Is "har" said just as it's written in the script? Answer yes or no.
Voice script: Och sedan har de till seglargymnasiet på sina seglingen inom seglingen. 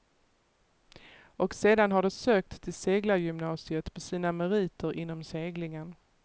yes